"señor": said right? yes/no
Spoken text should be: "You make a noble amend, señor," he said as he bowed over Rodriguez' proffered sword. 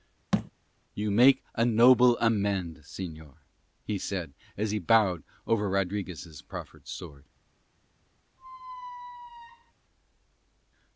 yes